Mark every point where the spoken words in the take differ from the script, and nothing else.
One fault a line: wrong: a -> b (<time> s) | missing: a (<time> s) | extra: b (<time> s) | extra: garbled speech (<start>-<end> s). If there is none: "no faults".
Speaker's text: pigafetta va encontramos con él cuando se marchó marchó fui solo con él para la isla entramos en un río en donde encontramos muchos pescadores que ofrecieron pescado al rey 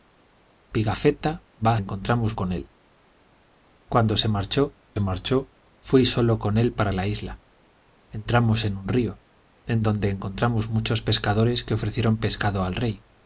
no faults